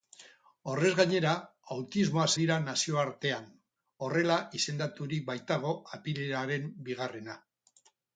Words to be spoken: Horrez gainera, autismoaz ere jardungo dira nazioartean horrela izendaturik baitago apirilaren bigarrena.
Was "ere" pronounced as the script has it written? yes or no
no